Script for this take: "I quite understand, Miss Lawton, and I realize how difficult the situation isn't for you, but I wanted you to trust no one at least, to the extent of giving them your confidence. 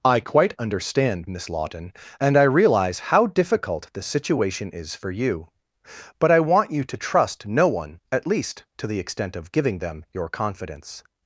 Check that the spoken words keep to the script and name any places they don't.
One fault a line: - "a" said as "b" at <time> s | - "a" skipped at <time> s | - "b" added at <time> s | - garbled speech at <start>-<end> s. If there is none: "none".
- "isn't" said as "is" at 4.7 s
- "wanted" said as "want" at 6.4 s